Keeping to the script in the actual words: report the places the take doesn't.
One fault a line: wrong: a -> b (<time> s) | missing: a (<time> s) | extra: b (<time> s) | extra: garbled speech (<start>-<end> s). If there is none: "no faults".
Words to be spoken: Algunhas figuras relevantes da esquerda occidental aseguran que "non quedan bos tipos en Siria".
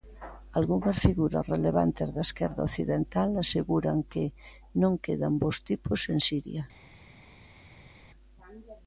no faults